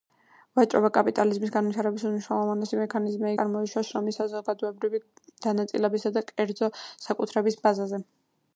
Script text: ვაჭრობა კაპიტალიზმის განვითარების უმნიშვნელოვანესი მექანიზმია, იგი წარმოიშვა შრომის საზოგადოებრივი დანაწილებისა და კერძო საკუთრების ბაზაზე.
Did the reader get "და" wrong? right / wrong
right